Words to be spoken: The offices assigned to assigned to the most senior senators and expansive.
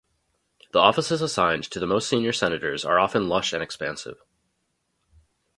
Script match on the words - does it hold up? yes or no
no